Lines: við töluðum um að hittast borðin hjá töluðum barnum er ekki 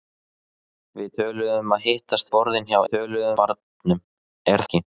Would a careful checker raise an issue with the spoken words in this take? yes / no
no